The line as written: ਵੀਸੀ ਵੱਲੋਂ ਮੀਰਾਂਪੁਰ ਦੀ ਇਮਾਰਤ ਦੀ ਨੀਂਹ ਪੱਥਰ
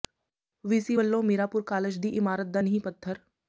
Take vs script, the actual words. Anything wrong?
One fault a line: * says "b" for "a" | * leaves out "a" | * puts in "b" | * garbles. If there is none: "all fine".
* puts in "ਕਾਲਜ"
* says "ਦਾ" for "ਦੀ"